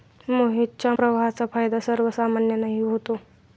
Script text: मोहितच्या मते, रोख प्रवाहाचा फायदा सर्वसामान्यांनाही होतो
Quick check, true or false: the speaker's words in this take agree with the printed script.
false